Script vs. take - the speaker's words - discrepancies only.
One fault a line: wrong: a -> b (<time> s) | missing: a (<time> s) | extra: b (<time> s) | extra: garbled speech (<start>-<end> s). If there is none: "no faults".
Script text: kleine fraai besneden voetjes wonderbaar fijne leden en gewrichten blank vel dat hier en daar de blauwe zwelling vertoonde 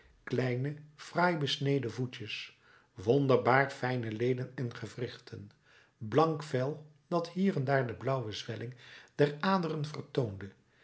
extra: der aderen (9.2 s)